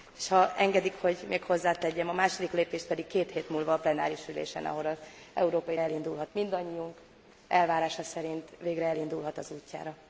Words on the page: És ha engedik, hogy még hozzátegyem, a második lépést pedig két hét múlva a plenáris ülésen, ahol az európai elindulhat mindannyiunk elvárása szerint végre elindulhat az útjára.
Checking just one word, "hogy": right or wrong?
right